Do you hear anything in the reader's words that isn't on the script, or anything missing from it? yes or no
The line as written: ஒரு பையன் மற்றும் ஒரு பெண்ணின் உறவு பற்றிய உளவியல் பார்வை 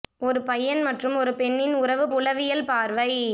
yes